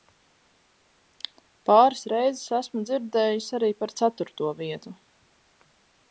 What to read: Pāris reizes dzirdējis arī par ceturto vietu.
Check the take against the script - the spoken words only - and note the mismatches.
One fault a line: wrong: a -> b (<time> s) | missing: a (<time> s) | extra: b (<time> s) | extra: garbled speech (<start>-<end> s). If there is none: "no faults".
extra: esmu (2.6 s)